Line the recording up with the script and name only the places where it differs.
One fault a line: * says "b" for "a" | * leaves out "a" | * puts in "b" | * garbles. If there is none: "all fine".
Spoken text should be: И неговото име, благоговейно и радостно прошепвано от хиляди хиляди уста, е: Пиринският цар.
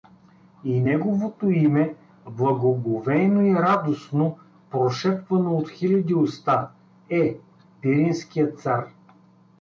* leaves out "хиляди"